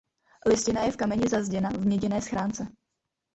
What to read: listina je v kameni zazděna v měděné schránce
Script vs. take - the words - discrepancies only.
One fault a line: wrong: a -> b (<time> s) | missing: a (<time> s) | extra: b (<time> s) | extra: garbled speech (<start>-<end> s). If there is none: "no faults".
no faults